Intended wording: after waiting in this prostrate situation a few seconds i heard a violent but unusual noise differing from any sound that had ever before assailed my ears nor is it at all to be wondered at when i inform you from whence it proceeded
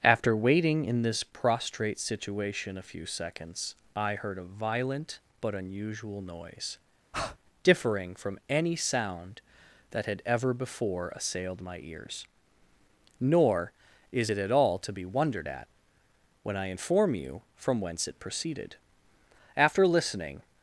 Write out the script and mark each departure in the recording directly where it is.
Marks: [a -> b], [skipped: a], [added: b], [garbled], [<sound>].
after waiting in this prostrate situation a few seconds i heard a violent but unusual noise [breath] differing from any sound that had ever before assailed my ears nor is it at all to be wondered at when i inform you from whence it proceeded [added: after listening]